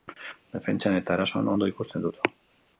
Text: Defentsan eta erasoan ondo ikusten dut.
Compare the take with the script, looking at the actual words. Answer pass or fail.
pass